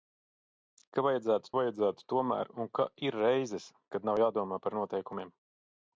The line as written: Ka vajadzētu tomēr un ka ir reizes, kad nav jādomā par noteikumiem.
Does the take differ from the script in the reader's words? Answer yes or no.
yes